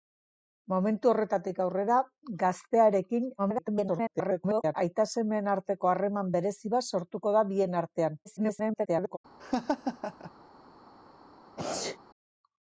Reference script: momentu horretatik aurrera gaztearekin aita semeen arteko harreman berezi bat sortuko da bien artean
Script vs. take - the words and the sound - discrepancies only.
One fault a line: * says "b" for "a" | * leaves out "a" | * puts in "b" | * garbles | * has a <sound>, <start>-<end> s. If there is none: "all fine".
* garbles
* garbles
* has a laugh, 9.4-10.3 s
* has a sneeze, 11.6-12.0 s